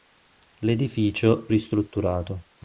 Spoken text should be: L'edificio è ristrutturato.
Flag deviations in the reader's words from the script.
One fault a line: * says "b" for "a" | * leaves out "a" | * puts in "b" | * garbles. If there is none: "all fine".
all fine